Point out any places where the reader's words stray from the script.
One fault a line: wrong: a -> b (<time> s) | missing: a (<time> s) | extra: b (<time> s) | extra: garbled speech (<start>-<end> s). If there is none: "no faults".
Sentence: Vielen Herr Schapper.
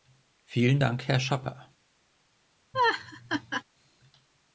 extra: Dank (0.8 s)